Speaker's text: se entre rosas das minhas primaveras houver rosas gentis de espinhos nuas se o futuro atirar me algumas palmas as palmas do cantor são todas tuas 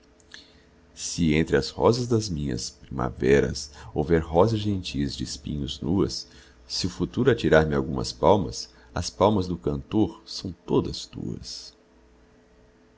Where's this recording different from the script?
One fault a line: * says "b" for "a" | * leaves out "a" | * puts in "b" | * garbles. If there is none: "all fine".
* puts in "as"